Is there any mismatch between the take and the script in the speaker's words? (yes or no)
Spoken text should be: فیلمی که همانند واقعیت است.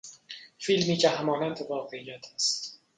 no